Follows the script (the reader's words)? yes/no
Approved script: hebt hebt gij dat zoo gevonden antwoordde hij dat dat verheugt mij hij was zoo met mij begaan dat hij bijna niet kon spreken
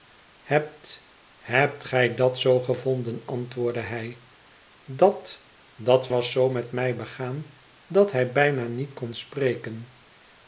no